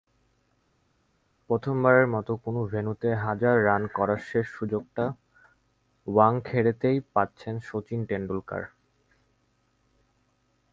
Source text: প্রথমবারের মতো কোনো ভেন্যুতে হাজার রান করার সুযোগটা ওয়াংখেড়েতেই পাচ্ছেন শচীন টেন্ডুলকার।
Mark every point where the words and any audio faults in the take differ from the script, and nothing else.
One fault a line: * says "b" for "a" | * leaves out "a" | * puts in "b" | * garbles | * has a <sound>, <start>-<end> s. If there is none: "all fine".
* puts in "শেষ"